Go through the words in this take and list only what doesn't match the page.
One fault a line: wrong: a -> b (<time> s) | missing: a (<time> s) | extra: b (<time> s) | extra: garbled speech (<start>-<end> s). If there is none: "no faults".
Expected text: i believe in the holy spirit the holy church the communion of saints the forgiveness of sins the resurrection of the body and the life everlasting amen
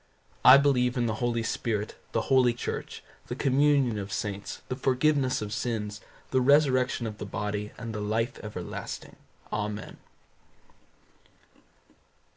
no faults